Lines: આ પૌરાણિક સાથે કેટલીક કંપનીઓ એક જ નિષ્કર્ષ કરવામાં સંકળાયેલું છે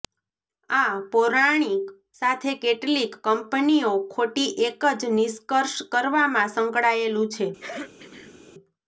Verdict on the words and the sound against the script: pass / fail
fail